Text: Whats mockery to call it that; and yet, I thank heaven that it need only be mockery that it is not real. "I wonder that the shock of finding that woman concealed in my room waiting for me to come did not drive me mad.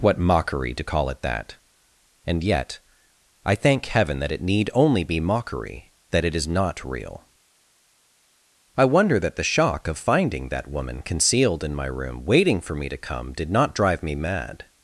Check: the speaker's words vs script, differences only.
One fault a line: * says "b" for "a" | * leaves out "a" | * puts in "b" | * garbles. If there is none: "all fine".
* says "What" for "Whats"